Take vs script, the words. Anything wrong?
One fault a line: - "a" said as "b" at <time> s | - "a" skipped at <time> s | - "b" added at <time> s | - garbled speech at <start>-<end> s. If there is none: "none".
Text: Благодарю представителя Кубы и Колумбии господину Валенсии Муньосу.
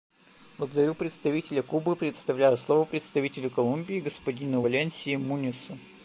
- "предоставляю слово представителю" added at 1.9 s